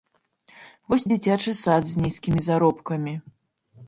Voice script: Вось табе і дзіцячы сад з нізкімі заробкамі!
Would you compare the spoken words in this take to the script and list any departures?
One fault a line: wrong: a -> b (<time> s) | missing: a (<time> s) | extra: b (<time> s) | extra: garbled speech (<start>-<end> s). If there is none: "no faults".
missing: табе (1.1 s)